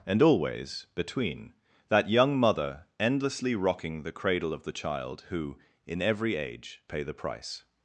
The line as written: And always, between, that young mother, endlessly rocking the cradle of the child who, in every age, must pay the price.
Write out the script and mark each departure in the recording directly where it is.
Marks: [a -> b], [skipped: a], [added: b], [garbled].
And always, between, that young mother, endlessly rocking the cradle of the child who, in every age, [skipped: must] pay the price.